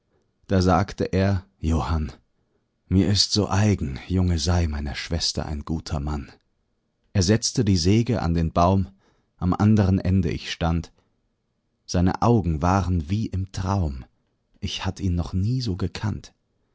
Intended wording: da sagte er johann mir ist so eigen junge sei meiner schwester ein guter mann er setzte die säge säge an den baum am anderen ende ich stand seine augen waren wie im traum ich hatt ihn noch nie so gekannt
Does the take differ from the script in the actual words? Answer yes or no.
yes